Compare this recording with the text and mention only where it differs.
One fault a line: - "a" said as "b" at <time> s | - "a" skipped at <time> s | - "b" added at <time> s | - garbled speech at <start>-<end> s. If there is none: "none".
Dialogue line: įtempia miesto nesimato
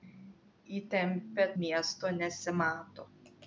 none